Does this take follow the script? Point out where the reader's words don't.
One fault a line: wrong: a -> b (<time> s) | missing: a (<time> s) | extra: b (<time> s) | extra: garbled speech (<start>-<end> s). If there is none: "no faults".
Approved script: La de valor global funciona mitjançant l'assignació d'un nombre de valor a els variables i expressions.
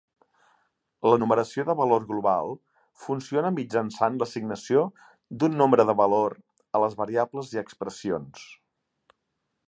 extra: numeració (1.2 s)
wrong: els -> les (6.9 s)